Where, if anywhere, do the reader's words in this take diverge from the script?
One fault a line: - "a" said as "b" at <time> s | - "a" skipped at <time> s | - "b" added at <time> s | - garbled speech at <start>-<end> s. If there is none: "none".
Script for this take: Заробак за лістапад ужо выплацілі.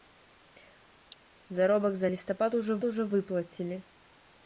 - "ужо" added at 2.8 s